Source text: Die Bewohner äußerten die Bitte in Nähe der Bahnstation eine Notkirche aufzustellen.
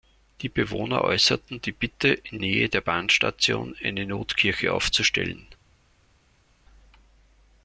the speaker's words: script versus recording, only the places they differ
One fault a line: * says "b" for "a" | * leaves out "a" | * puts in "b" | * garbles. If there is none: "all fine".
all fine